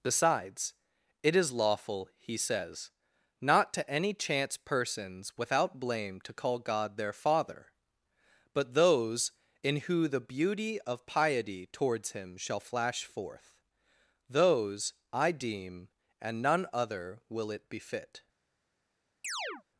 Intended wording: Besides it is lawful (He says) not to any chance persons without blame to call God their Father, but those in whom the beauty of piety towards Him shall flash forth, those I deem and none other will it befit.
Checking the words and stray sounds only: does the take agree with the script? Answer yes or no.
no